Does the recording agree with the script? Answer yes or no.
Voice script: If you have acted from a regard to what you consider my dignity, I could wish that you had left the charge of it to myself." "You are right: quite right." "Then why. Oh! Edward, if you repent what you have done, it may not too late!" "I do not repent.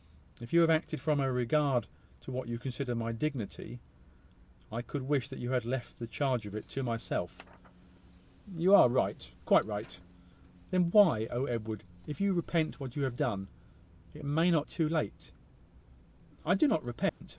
yes